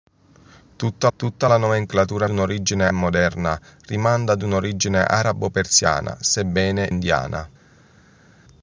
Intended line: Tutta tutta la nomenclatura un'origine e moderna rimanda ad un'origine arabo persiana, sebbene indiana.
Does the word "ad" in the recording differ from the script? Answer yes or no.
no